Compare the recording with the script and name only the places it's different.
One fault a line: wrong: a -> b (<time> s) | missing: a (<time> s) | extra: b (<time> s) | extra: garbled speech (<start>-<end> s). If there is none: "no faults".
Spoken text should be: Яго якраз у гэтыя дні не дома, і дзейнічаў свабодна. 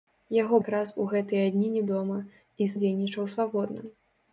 no faults